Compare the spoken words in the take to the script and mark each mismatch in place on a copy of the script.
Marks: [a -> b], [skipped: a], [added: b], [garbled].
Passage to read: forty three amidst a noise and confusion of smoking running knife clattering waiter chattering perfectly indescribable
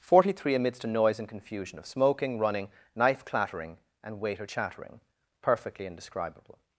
forty three amidst a noise and confusion of smoking running knife clattering [added: and] waiter chattering perfectly indescribable